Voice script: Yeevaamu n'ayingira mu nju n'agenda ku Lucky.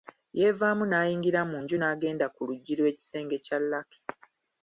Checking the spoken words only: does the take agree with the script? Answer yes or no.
no